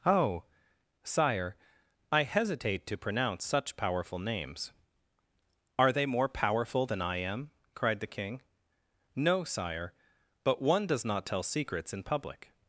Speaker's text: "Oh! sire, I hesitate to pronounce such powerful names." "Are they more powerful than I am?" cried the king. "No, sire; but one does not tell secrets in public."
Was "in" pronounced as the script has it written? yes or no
yes